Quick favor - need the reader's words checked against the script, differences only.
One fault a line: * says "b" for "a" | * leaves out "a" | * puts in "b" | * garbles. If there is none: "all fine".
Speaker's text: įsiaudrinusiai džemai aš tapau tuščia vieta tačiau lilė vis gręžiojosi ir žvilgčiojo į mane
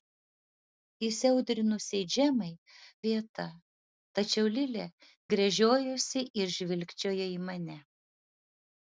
* leaves out "aš tapau tuščia"
* leaves out "vis"